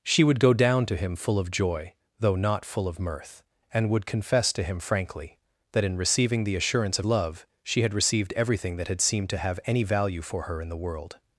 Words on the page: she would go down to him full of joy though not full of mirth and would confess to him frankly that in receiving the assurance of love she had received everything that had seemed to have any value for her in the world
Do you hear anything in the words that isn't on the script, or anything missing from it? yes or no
no